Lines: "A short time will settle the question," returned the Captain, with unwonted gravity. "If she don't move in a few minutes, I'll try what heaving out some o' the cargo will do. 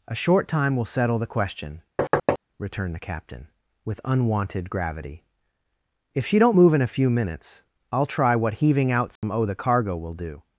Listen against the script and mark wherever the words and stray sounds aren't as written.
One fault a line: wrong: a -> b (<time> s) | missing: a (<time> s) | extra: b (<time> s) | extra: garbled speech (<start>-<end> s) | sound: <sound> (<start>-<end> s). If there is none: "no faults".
sound: thud (2.0-2.4 s)
sound: dropout (9.2-9.2 s)